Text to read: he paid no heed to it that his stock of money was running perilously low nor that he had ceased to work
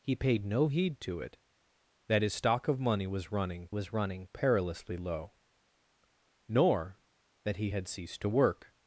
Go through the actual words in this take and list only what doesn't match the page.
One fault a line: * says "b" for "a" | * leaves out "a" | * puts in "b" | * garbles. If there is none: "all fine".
* puts in "was running"